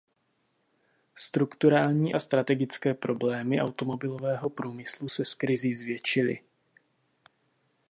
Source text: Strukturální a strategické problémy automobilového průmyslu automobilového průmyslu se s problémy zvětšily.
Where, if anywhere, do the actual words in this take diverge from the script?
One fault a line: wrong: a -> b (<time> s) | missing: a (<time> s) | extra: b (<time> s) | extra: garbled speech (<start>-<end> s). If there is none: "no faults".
missing: automobilového průmyslu (5.1 s)
wrong: problémy -> krizí (5.3 s)